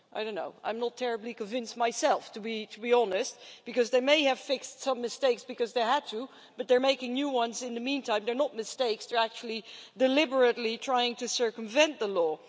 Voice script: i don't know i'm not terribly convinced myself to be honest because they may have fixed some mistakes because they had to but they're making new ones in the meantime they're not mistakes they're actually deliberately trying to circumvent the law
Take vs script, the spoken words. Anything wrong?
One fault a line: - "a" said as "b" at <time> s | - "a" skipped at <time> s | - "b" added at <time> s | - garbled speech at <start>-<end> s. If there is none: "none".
none